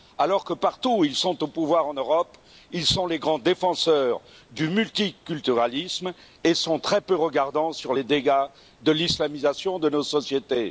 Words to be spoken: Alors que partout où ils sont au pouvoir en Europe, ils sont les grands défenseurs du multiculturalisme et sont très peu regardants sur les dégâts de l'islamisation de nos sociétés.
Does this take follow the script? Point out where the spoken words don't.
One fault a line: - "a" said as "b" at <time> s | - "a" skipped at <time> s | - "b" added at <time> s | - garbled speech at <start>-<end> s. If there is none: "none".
none